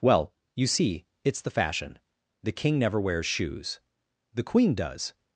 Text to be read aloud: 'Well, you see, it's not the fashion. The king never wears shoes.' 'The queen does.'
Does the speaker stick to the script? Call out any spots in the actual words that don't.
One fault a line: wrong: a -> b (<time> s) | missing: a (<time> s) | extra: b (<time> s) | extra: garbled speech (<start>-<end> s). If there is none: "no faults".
missing: not (1.4 s)